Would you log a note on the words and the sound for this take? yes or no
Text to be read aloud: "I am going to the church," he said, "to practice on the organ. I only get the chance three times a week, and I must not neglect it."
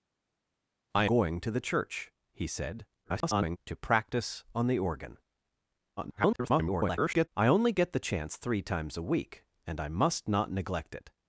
yes